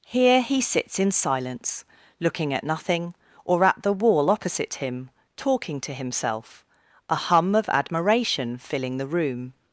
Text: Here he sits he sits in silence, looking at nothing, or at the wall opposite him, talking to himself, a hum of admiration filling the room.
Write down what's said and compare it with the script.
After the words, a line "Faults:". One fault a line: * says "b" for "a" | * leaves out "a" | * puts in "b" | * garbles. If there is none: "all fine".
Here he sits in silence, looking at nothing, or at the wall opposite him, talking to himself, a hum of admiration filling the room.
Faults:
* leaves out "he sits"